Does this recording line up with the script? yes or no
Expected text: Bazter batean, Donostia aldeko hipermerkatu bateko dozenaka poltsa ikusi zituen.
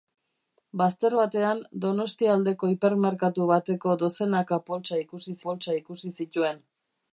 no